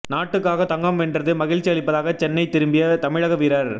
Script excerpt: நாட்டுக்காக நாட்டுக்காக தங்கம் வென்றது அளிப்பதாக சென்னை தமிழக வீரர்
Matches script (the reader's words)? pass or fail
fail